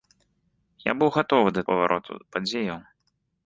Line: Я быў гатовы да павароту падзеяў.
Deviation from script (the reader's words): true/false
false